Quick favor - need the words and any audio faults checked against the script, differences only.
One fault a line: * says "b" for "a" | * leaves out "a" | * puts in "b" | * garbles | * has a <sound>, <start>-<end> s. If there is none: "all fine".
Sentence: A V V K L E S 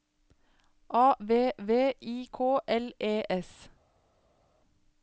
* puts in "I"